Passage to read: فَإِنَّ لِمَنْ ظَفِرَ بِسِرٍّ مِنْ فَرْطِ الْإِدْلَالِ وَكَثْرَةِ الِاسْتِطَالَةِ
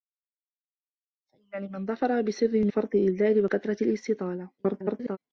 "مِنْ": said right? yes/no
no